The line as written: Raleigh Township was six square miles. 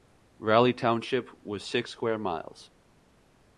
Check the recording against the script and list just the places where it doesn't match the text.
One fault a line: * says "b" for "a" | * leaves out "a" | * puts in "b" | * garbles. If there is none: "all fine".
all fine